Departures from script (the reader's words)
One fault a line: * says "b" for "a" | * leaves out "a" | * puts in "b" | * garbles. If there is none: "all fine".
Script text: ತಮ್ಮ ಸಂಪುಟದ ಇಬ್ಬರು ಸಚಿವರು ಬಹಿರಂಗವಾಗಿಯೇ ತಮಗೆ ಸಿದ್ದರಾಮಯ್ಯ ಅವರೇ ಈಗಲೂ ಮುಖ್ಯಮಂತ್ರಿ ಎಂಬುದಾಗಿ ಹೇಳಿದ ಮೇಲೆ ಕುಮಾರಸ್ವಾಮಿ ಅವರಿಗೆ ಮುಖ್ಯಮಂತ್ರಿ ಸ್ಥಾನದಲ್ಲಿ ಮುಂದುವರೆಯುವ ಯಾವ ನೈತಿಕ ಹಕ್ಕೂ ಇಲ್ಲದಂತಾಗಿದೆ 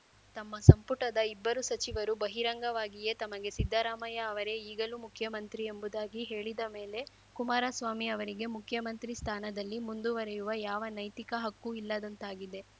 all fine